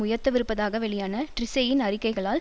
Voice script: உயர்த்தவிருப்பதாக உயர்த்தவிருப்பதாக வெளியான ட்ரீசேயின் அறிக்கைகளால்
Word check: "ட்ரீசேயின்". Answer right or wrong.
right